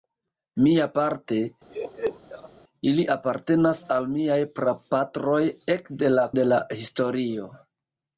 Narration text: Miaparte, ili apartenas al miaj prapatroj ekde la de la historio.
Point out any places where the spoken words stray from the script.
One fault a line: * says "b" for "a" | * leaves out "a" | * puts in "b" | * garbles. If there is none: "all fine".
all fine